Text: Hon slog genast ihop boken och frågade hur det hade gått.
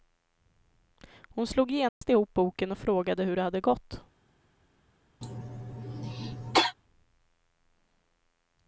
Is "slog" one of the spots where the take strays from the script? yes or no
no